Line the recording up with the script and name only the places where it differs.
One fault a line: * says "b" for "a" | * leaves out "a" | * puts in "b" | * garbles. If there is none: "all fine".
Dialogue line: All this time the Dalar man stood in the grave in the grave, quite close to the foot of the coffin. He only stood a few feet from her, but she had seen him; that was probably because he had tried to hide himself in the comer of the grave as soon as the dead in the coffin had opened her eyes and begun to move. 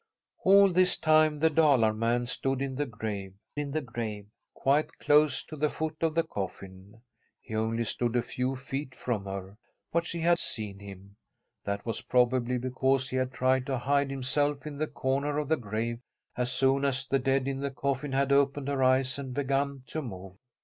all fine